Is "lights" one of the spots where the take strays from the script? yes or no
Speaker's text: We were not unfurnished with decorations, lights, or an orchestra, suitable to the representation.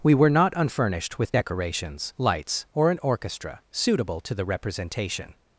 no